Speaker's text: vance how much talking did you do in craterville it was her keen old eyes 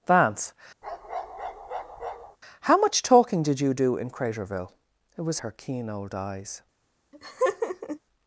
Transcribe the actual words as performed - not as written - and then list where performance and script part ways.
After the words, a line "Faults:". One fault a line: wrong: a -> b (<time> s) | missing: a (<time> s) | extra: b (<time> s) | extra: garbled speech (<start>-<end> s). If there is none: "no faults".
vance how much talking did you do in craterville it was her keen old eyes
Faults:
no faults